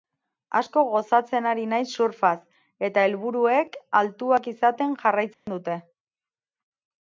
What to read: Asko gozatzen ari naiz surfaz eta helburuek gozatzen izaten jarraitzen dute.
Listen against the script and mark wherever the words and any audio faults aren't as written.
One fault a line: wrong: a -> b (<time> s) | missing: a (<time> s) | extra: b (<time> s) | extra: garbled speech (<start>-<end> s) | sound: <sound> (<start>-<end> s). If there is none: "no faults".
wrong: gozatzen -> altuak (4.0 s)
sound: dropout (5.3-5.5 s)